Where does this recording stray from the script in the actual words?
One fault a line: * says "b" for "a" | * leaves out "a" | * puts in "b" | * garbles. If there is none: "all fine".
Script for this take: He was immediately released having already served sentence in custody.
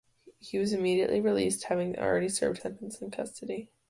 all fine